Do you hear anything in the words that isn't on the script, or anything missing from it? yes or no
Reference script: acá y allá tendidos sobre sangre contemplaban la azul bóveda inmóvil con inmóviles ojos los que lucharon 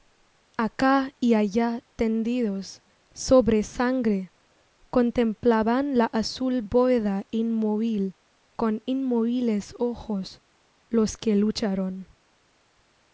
no